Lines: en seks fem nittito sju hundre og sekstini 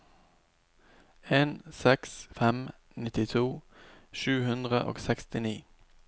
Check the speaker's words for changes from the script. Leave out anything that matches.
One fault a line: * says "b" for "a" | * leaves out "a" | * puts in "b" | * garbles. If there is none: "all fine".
all fine